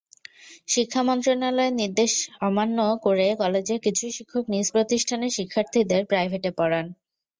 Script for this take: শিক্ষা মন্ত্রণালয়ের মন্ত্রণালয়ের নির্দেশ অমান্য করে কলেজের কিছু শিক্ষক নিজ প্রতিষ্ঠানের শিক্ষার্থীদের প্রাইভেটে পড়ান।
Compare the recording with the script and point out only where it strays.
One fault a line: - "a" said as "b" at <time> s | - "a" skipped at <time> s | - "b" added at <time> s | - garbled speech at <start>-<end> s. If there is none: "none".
- "মন্ত্রণালয়ের" skipped at 1.8 s